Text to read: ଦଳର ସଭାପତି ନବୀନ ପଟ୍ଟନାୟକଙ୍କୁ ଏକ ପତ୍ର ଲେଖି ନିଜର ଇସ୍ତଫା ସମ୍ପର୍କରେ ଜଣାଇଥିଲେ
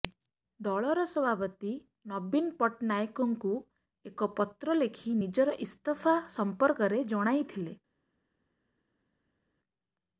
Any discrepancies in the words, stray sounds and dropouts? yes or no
no